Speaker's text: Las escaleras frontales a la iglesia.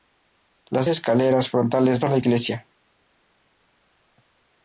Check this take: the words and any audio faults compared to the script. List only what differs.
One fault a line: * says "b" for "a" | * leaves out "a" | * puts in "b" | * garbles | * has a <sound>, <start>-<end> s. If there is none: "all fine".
all fine